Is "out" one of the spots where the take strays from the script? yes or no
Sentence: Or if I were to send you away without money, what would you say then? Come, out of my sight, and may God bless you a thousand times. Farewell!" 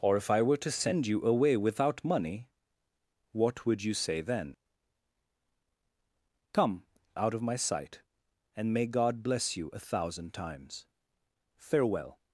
no